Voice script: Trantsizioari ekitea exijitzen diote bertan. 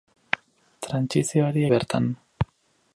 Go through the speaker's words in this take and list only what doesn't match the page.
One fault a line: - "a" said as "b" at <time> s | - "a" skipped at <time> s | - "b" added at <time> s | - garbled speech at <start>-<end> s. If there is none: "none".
- "ekitea exijitzen diote" skipped at 1.6 s